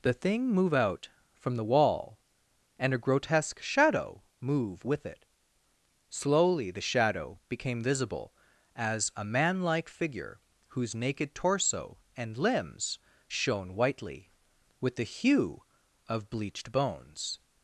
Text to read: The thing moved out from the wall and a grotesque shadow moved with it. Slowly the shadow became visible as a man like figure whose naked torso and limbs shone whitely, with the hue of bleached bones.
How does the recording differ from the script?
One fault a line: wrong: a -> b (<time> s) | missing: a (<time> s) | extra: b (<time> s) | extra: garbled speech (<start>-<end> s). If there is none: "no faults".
wrong: moved -> move (0.5 s)
wrong: moved -> move (4.4 s)